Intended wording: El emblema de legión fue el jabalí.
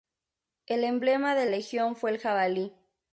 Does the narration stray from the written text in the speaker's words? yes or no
no